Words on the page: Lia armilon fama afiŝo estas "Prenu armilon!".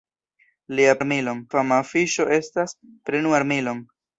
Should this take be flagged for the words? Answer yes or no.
no